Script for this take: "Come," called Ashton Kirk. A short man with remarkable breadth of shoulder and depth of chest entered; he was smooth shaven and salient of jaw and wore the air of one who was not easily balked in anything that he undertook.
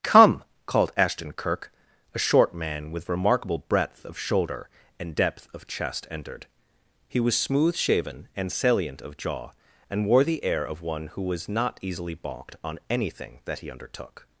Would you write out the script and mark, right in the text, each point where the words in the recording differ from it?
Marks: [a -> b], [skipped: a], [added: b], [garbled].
"Come," called Ashton Kirk. A short man with remarkable breadth of shoulder and depth of chest entered; he was smooth shaven and salient of jaw and wore the air of one who was not easily balked [in -> on] anything that he undertook.